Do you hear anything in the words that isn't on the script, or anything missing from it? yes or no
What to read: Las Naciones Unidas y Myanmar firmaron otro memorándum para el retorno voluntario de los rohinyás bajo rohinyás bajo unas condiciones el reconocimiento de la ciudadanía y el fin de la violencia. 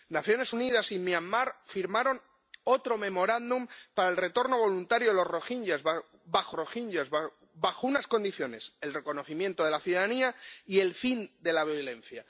no